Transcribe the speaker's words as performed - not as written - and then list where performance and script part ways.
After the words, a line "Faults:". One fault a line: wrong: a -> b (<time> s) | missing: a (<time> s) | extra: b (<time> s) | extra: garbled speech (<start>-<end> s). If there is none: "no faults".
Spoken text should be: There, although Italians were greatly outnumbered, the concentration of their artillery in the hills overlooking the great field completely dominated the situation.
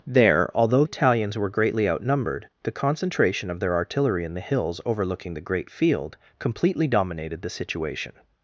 There, although Italians were greatly outnumbered, the concentration of their artillery in the hills overlooking the great field completely dominated the situation.
Faults:
no faults